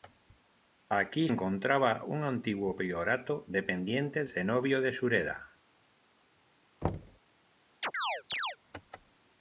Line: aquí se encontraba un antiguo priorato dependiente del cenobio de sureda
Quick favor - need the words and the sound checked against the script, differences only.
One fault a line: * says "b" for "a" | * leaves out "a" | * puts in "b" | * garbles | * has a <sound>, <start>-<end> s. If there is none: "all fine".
* leaves out "se"
* leaves out "del"
* has a thud, 6.8-7.2 s
* has a chirp, 7.8-8.6 s